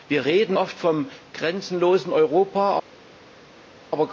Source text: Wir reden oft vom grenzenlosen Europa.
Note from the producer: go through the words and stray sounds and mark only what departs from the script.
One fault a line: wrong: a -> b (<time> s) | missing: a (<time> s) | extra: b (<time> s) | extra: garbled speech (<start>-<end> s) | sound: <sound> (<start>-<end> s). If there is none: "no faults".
no faults